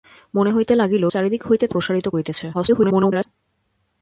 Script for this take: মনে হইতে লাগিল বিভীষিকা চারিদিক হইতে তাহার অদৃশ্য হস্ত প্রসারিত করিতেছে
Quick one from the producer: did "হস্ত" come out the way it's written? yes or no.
no